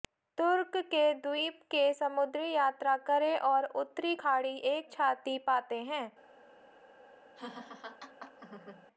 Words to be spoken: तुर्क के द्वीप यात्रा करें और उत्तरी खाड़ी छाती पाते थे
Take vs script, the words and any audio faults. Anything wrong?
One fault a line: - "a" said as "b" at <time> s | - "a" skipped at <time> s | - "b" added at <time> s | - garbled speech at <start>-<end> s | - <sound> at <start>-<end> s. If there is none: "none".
- "के समुद्री" added at 1.7 s
- "एक" added at 4.7 s
- "थे" said as "हैं" at 5.8 s
- laugh at 7.4-8.9 s